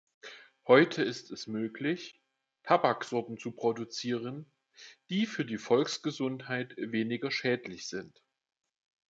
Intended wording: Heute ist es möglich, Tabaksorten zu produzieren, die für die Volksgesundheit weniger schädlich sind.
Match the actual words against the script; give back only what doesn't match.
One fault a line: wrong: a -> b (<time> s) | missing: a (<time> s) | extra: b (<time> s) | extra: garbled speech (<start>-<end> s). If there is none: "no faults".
no faults